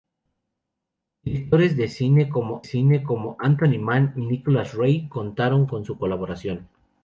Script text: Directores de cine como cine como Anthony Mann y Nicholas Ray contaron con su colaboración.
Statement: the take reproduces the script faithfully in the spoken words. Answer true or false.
true